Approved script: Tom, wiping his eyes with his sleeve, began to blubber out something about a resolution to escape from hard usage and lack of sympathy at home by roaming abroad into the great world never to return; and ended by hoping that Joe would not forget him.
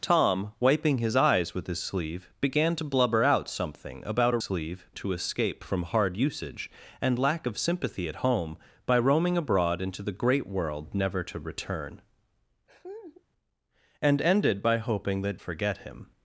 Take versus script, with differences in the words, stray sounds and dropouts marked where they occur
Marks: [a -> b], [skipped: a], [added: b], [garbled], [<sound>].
Tom, wiping his eyes with his sleeve, began to blubber out something about a [resolution -> sleeve] to escape from hard usage and lack of sympathy at home by roaming abroad into the great world never to return; [laugh] and ended by hoping that [skipped: Joe would not] forget him.